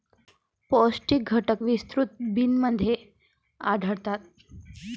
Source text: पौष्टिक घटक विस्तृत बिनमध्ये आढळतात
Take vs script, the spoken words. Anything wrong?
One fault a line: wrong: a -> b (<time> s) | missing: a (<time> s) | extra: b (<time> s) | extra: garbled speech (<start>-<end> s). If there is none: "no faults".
no faults